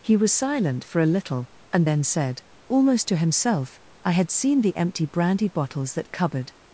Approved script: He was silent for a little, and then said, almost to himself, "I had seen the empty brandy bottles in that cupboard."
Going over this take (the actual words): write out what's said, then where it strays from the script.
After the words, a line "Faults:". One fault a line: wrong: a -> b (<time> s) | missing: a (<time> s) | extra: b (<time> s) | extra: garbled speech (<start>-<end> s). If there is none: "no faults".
He was silent for a little, and then said, almost to himself, "I had seen the empty brandy bottles that cupboard."
Faults:
missing: in (5.9 s)